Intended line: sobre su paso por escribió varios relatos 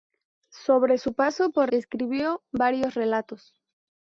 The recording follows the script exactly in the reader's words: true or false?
true